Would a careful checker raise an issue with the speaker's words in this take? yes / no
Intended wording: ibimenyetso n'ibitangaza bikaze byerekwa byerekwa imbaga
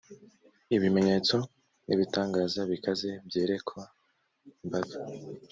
yes